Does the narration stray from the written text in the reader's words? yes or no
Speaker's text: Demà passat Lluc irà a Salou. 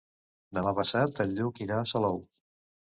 yes